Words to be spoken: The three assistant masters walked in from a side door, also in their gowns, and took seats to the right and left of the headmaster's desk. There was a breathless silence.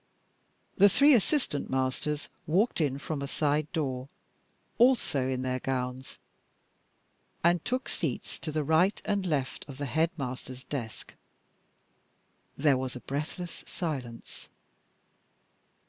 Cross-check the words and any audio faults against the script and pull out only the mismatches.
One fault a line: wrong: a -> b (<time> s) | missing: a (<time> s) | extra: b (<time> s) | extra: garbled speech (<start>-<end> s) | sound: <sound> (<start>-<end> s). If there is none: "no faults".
no faults